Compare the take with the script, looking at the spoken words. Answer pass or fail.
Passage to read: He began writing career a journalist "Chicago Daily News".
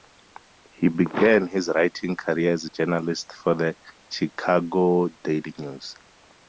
fail